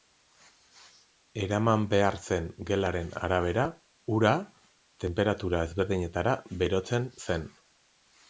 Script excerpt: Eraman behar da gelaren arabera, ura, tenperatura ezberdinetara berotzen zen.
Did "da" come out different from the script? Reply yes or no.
yes